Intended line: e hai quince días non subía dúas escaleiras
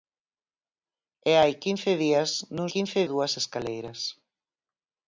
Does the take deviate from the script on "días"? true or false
false